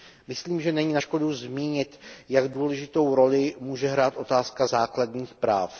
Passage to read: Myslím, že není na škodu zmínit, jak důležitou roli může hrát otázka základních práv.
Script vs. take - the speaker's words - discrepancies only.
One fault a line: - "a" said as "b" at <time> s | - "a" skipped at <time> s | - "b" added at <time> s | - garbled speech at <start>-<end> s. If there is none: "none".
none